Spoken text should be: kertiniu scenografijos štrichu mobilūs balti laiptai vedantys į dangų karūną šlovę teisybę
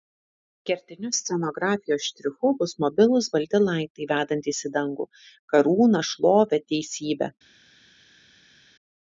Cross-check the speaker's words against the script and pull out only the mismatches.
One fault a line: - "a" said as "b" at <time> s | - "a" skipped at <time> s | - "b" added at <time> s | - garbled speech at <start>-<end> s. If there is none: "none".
- "bus" added at 2.6 s